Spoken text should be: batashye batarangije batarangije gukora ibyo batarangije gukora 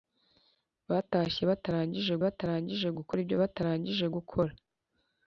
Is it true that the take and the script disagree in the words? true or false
false